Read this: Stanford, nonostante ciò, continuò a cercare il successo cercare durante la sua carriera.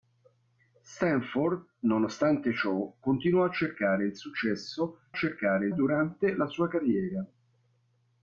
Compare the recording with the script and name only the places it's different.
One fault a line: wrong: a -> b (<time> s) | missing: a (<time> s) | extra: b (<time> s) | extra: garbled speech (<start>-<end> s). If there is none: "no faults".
no faults